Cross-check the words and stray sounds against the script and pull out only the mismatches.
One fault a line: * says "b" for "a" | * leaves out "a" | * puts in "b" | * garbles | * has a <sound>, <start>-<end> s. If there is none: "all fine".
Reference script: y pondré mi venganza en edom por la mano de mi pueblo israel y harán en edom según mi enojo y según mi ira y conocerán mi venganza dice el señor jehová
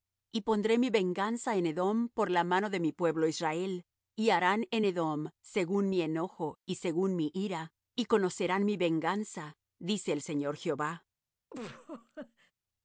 * has a laugh, 11.5-12.5 s